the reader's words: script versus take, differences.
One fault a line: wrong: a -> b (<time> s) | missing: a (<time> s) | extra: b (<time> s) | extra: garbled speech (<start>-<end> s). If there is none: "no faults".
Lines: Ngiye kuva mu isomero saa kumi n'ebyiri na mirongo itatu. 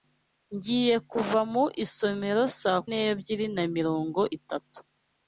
missing: kumi (2.8 s)